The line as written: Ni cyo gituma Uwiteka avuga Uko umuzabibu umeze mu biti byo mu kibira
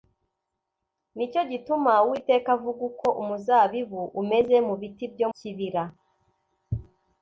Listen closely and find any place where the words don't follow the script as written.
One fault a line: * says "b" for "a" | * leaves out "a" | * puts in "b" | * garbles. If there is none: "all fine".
* leaves out "mu"